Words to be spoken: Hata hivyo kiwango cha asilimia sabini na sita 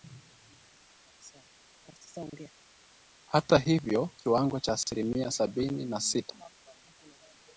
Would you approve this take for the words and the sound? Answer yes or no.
yes